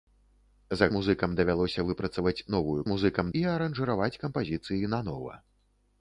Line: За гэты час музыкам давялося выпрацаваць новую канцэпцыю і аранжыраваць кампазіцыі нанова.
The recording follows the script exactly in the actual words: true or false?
false